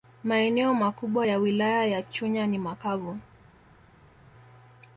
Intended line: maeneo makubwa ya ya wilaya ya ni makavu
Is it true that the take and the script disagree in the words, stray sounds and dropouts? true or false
true